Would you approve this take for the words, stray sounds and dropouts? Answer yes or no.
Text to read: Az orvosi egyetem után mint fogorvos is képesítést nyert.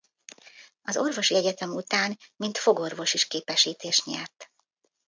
yes